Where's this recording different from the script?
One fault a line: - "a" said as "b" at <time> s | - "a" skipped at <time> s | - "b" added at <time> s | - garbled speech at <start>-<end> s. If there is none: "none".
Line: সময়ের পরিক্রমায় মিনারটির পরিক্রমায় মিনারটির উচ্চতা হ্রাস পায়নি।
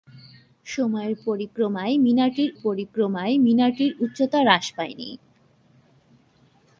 none